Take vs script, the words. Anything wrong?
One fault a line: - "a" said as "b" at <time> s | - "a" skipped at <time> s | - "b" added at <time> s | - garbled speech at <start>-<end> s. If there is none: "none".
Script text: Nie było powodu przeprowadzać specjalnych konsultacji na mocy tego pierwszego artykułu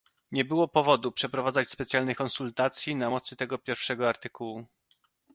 none